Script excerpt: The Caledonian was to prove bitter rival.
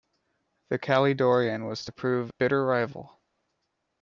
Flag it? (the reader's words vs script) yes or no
no